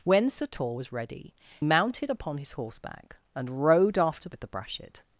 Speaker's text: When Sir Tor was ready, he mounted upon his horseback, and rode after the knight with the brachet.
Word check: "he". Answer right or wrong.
wrong